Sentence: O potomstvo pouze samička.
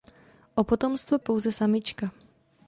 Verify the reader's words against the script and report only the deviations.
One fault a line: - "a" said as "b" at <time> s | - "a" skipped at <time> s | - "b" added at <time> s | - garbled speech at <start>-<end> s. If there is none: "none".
none